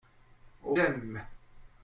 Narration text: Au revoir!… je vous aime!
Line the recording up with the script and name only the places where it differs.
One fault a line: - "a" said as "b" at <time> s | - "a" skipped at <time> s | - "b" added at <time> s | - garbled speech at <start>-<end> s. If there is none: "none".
- "revoir je vous" skipped at 0.8 s